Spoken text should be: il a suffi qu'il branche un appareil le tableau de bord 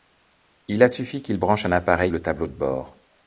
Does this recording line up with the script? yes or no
yes